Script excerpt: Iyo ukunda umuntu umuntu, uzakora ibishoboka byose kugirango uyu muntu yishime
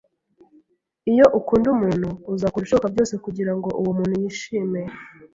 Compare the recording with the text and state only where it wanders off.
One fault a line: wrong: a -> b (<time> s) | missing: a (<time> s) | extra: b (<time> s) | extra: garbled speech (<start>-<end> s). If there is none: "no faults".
missing: umuntu (2.1 s)
wrong: uyu -> uwo (3.8 s)